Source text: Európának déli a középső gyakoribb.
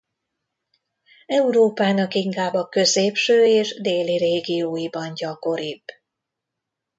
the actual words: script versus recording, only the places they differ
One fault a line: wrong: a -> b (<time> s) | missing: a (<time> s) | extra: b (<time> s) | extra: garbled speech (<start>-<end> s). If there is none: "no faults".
wrong: déli -> inkább (2.1 s)
extra: és déli régióiban (3.4 s)